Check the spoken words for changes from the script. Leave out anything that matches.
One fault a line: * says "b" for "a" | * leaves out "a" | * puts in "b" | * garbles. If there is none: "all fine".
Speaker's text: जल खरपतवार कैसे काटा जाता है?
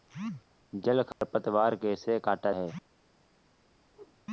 * leaves out "जाता"